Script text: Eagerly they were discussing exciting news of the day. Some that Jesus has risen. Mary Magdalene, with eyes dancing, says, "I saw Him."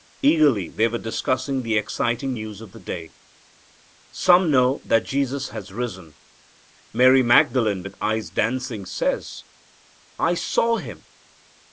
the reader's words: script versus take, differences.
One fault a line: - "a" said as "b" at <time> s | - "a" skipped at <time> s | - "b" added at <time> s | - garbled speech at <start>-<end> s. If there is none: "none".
- "the" added at 1.6 s
- "know" added at 4.5 s